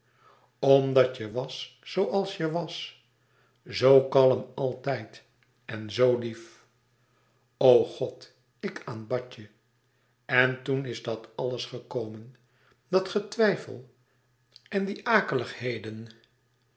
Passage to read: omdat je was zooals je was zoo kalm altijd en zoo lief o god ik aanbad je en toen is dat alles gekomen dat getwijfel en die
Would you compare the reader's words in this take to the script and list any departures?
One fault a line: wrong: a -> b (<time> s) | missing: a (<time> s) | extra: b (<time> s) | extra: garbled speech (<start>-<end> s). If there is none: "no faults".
no faults